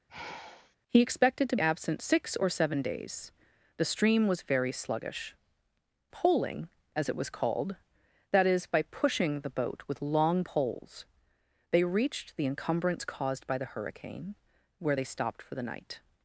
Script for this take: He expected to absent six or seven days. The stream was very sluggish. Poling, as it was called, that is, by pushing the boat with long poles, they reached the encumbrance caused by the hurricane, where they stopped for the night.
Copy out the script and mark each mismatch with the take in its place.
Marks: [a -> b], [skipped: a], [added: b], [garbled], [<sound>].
[sigh] He expected to absent six or seven days. The stream was very sluggish. Poling, as it was called, that is, by pushing the boat with long poles, they reached the encumbrance caused by the hurricane, where they stopped for the night.